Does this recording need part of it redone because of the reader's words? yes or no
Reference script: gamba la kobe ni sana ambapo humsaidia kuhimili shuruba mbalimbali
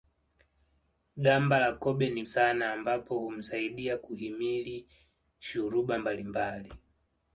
no